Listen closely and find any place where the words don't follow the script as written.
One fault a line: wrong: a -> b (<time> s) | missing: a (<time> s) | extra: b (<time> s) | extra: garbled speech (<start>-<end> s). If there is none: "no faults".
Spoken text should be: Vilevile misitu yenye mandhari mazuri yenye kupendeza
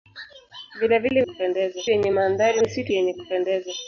wrong: misitu -> kupendeza (1.2 s)
wrong: mazuri -> misitu (2.6 s)